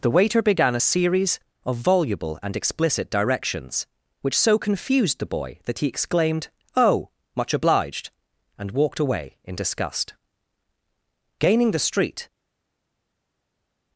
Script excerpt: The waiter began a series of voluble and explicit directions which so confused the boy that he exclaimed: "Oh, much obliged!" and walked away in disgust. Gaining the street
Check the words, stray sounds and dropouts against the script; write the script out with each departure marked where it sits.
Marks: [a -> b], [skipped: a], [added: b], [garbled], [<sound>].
The waiter began a series of voluble and explicit directions which so confused the boy that he exclaimed: "Oh, much obliged!" and walked away in disgust. Gaining the street